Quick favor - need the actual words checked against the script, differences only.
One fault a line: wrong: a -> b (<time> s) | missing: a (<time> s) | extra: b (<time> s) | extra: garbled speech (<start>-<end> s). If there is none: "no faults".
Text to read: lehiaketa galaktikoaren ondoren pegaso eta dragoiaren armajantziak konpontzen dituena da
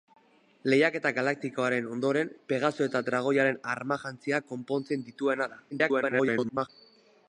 extra: garbled speech (5.7-6.7 s)